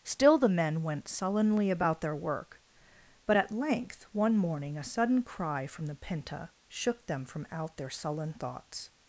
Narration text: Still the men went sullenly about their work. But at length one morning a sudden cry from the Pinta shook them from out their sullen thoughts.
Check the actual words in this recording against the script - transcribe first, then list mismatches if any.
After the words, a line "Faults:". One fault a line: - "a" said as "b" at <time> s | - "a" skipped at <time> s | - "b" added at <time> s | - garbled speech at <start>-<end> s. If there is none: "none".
Still the men went sullenly about their work. But at length one morning a sudden cry from the Pinta shook them from out their sullen thoughts.
Faults:
none